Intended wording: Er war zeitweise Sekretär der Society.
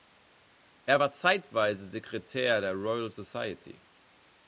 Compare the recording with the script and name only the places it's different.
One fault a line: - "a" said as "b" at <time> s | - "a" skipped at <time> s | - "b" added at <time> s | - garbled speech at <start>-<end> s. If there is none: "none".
- "Royal" added at 2.7 s